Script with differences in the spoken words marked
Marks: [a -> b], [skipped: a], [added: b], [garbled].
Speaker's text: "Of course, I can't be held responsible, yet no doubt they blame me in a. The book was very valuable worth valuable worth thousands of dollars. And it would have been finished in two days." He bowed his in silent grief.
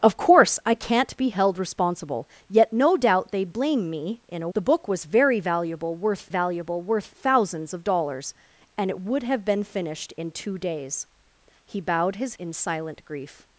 "Of course, I can't be held responsible, yet no doubt they blame me in a. The book was very valuable worth valuable worth thousands of dollars. And it would have been finished in two days." He bowed his in silent grief.